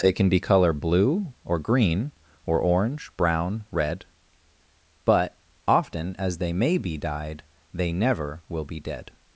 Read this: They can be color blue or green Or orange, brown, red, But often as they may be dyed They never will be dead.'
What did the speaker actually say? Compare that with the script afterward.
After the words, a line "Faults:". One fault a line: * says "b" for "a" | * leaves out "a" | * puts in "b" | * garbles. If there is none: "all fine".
They can be color blue or green Or orange, brown, red, But often as they may be dyed They never will be dead.'
Faults:
all fine